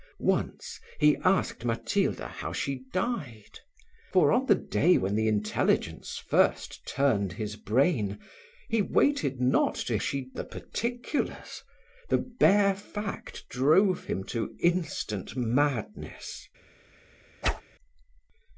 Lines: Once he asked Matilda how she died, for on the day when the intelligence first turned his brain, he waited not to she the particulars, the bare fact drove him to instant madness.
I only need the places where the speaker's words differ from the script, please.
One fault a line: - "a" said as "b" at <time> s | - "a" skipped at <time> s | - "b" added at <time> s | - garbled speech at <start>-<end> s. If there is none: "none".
none